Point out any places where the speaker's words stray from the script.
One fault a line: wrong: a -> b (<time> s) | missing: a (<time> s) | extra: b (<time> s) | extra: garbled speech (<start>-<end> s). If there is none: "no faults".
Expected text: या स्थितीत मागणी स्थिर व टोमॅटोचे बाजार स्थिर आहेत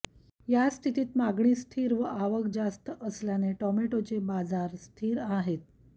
extra: आवक जास्त असल्याने (2.0 s)